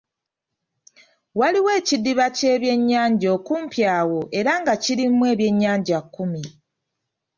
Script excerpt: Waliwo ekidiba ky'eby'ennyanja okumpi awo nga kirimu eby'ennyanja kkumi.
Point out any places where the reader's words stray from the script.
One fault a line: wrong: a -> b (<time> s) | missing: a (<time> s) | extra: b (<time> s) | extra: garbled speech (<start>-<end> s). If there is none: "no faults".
extra: era (4.4 s)